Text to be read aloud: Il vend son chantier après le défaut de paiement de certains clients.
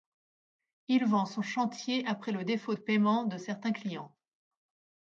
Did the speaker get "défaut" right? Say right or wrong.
right